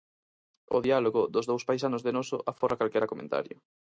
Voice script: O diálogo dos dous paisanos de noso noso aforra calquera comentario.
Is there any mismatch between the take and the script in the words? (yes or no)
yes